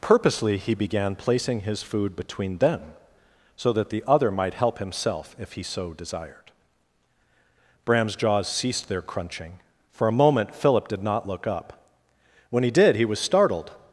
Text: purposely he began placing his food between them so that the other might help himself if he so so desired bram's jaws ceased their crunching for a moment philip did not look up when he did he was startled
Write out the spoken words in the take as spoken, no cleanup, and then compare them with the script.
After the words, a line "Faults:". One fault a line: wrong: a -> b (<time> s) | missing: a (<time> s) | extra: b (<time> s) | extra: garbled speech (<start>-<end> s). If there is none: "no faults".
purposely he began placing his food between them so that the other might help himself if he so desired bram's jaws ceased their crunching for a moment philip did not look up when he did he was startled
Faults:
missing: so (5.9 s)